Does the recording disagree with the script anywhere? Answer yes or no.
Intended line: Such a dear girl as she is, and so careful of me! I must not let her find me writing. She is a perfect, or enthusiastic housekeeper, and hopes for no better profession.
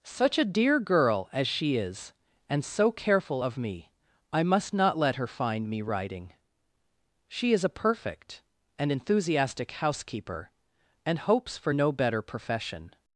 yes